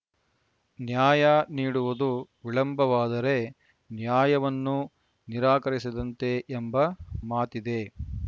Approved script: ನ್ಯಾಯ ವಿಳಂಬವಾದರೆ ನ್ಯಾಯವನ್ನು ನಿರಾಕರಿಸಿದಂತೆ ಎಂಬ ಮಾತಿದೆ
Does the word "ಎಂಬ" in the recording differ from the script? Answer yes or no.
no